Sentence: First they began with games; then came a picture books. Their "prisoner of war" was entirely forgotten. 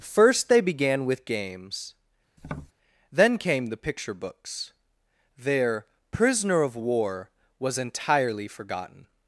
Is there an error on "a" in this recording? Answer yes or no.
yes